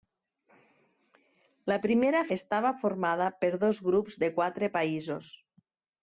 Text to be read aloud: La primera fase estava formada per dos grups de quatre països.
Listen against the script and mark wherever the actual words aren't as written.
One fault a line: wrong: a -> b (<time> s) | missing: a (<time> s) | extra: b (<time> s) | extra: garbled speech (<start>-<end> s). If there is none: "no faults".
missing: fase (2.2 s)